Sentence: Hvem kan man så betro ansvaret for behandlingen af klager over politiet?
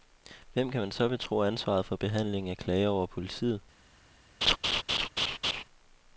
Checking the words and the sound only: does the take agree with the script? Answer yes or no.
no